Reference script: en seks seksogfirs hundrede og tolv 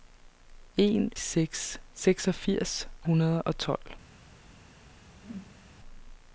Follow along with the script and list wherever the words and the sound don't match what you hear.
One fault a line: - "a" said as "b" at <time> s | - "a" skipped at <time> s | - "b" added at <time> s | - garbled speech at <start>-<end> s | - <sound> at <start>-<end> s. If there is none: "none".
- whoosh at 5.1-5.7 s